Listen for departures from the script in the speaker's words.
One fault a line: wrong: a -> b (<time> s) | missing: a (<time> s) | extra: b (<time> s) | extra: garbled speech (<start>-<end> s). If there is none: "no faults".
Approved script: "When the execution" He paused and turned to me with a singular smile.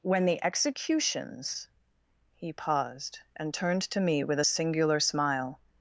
wrong: execution -> executions (0.4 s)